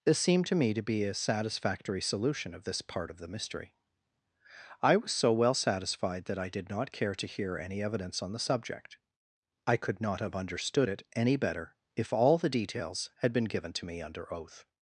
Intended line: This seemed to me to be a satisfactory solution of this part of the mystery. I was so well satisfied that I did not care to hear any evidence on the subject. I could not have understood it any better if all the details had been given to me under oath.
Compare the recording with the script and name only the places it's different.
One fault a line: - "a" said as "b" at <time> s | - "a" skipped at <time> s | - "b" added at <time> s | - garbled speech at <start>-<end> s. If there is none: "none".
none